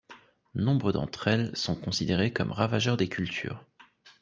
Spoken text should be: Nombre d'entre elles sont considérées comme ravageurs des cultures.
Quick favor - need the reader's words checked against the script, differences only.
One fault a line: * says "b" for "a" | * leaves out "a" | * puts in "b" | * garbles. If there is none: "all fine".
all fine